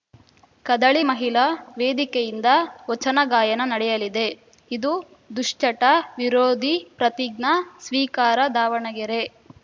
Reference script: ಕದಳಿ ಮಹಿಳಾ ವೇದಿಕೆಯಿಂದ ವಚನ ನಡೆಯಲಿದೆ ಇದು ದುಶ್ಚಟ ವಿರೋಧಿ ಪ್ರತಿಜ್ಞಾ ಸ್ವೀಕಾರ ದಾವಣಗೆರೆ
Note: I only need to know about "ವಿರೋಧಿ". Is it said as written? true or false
true